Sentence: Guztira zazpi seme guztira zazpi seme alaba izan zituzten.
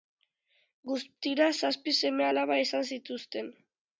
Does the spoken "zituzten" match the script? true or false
true